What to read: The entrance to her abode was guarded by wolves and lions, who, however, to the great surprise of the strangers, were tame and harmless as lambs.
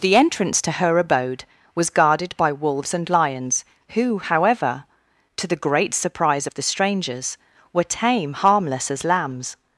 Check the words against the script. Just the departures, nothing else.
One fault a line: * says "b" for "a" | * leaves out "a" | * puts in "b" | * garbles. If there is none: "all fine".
* leaves out "and"